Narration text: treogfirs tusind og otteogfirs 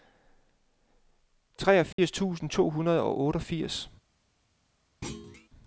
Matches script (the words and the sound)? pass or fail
fail